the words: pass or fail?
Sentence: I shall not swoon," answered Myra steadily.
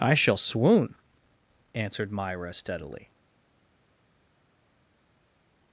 fail